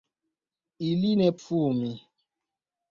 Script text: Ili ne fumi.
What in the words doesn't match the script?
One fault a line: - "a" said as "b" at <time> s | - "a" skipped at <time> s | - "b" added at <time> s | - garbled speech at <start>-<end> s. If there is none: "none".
none